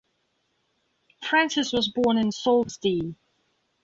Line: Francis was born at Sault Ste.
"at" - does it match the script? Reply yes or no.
no